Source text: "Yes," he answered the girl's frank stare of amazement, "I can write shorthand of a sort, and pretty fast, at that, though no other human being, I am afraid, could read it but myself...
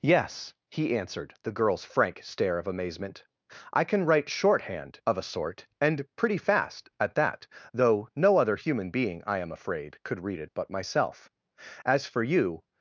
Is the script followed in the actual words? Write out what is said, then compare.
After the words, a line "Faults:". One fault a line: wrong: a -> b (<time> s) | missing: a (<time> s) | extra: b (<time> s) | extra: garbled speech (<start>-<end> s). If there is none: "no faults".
"Yes," he answered the girl's frank stare of amazement, "I can write shorthand of a sort, and pretty fast, at that, though no other human being, I am afraid, could read it but myself... As for you
Faults:
extra: As for you (11.8 s)